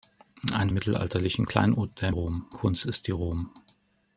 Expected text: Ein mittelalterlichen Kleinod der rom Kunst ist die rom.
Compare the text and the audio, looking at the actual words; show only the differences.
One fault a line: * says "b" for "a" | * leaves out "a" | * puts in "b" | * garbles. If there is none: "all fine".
all fine